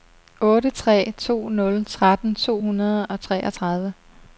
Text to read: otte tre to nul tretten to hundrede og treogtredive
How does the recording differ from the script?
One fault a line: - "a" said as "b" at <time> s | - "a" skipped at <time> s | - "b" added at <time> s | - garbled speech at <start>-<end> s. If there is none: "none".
none